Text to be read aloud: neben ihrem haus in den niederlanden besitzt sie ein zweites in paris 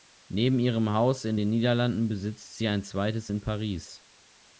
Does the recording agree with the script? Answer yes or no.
yes